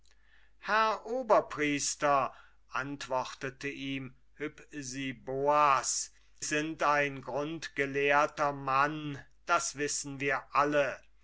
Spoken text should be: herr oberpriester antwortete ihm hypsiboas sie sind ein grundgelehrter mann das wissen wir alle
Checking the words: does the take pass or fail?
fail